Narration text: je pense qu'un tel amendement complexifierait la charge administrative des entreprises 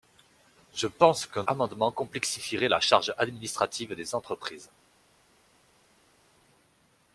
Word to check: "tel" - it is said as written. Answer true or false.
false